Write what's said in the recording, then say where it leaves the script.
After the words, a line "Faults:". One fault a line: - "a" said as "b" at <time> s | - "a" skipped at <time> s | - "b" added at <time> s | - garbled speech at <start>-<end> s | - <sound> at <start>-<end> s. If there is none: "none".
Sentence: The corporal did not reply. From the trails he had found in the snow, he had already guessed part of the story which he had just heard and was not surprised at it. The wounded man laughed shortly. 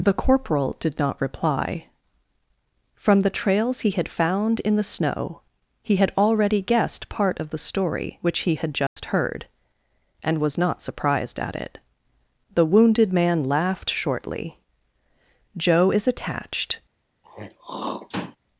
The corporal did not reply. From the trails he had found in the snow, he had already guessed part of the story which he had just heard and was not surprised at it. The wounded man laughed shortly. "Joe is attached
Faults:
- dropout at 8.9-9.0 s
- "Joe is attached" added at 15.6 s
- throat clearing at 17.2-18.4 s